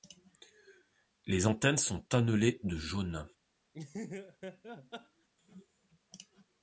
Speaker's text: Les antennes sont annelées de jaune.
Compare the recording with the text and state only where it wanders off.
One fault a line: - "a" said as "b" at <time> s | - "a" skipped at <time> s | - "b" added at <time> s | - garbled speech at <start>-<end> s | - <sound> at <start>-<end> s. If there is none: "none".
- laugh at 3.7-5.3 s